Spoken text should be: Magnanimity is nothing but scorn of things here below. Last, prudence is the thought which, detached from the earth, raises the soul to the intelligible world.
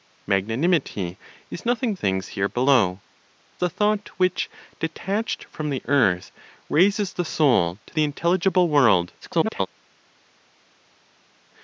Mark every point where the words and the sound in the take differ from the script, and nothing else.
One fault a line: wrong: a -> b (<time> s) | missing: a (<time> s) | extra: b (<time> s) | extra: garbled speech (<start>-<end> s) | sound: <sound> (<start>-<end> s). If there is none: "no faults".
missing: but scorn of (1.9 s)
missing: Last prudence is (3.0 s)
extra: garbled speech (9.2-9.7 s)